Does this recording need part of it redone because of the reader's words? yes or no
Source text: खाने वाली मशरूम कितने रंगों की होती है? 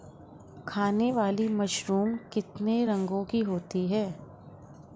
no